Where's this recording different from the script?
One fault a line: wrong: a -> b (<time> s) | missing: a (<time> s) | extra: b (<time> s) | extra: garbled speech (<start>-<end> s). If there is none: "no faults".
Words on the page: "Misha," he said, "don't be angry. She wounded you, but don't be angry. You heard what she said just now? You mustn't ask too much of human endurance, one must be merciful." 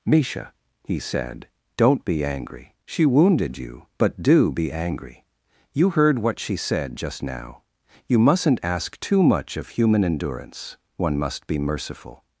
wrong: don't -> do (4.2 s)